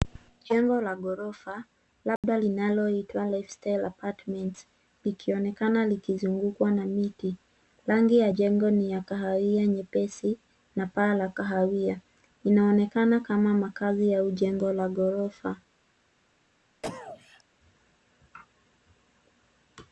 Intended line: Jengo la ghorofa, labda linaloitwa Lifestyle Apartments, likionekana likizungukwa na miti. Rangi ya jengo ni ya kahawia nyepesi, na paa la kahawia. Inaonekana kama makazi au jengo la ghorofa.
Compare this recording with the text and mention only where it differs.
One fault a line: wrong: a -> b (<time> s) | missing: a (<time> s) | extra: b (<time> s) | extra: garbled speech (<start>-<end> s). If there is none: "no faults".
no faults